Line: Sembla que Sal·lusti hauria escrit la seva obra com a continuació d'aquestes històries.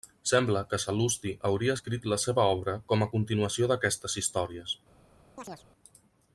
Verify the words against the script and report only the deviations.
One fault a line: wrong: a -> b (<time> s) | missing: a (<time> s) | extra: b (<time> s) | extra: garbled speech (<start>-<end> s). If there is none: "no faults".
no faults